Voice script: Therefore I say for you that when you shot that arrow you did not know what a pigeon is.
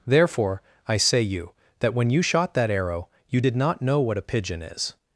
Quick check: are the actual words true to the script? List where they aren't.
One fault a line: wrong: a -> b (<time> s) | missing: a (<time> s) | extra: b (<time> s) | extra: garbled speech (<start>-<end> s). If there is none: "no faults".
missing: for (1.2 s)